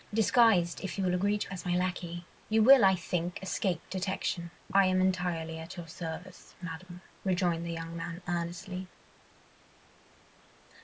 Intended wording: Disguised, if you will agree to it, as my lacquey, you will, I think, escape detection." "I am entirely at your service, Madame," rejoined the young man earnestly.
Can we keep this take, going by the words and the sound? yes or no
no